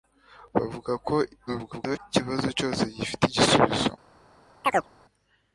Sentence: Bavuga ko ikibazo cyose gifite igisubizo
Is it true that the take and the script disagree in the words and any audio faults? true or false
true